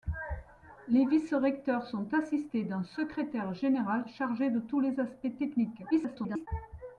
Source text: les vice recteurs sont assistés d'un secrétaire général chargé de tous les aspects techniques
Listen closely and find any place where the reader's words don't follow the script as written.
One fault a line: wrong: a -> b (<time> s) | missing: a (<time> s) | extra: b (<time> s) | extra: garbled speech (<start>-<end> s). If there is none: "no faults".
extra: garbled speech (5.9-6.5 s)